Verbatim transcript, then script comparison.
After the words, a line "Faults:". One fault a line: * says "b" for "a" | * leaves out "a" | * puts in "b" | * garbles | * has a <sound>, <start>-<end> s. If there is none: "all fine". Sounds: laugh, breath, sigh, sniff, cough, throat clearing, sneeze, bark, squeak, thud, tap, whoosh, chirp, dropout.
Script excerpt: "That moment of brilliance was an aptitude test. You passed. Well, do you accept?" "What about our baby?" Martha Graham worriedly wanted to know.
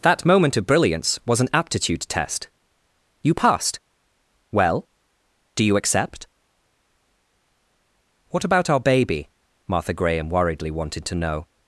"That moment of brilliance was an aptitude test. You passed. Well, do you accept?" "What about our baby?" Martha Graham worriedly wanted to know.
Faults:
all fine